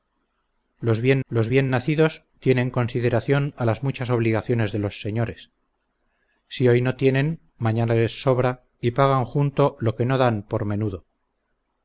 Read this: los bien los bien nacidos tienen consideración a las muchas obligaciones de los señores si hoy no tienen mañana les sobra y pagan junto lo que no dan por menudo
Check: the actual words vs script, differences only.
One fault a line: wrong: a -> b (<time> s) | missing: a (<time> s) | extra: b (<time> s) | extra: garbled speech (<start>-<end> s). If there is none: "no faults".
no faults